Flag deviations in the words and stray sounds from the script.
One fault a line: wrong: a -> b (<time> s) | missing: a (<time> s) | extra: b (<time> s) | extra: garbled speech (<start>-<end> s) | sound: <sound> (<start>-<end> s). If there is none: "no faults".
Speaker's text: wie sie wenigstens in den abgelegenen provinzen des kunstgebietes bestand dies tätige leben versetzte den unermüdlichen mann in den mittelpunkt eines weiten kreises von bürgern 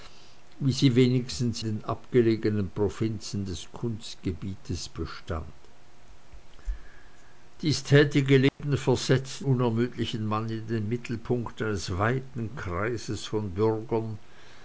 missing: in (1.6 s)
sound: dropout (8.5-8.6 s)
missing: den (9.4 s)